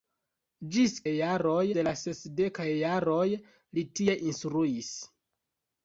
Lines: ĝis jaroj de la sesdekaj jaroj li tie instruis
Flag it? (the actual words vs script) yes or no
no